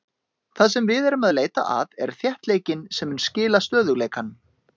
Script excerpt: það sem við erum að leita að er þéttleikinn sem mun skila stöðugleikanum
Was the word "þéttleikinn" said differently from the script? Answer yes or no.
no